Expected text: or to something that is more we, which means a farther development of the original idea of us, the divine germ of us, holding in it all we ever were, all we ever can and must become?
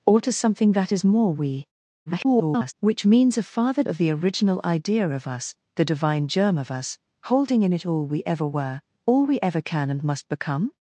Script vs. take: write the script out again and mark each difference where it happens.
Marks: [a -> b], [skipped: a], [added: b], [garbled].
or to something that is more we, [garbled] which means a farther [skipped: development] of the original idea of us, the divine germ of us, holding in it all we ever were, all we ever can and must become?